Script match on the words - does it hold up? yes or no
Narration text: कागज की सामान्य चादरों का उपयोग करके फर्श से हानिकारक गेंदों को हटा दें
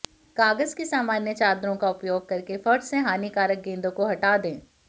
yes